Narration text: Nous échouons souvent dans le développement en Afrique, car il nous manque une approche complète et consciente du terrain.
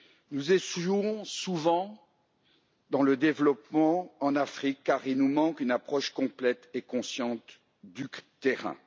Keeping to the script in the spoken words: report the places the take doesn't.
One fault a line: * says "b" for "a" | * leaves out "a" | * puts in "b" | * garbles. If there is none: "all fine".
all fine